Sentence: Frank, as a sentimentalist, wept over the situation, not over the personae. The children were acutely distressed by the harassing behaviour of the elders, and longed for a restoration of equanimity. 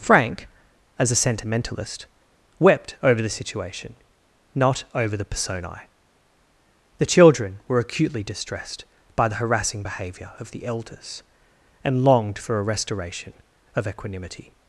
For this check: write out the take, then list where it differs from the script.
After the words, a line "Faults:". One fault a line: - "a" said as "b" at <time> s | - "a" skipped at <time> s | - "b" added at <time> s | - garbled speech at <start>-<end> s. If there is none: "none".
Frank, as a sentimentalist, wept over the situation, not over the personae. The children were acutely distressed by the harassing behaviour of the elders, and longed for a restoration of equanimity.
Faults:
none